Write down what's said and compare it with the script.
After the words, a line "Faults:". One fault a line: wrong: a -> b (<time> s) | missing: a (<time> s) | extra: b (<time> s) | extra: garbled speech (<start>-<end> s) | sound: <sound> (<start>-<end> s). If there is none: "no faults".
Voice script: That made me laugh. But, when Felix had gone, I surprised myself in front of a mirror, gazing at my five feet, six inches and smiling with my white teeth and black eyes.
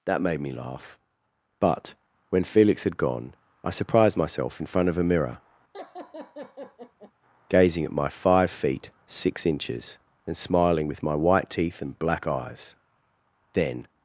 That made me laugh. But, when Felix had gone, I surprised myself in front of a mirror, gazing at my five feet, six inches and smiling with my white teeth and black eyes. Then
Faults:
sound: laugh (5.7-7.1 s)
extra: Then (13.5 s)